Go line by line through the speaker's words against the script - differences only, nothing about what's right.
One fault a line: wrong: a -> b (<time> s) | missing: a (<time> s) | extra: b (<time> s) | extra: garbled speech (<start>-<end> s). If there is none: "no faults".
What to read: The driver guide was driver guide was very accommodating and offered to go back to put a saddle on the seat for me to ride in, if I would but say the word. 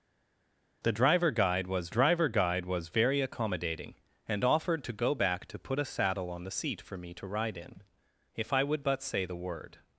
no faults